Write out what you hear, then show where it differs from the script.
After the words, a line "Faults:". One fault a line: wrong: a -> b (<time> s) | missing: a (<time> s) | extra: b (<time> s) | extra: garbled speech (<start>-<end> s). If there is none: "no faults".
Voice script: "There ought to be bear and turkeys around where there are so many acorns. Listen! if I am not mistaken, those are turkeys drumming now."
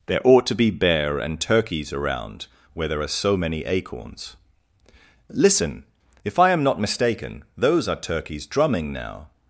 "There ought to be bear and turkeys around where there are so many acorns. Listen! if I am not mistaken, those are turkeys drumming now."
Faults:
no faults